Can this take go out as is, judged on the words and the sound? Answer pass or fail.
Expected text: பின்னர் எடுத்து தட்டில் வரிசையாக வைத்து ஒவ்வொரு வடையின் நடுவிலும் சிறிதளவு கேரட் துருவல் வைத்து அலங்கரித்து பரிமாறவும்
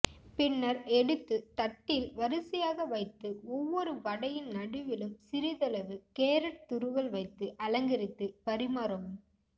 pass